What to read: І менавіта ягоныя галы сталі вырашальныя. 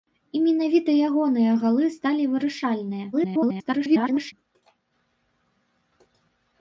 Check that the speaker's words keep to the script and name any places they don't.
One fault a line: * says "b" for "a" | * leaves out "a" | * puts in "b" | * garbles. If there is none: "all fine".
* garbles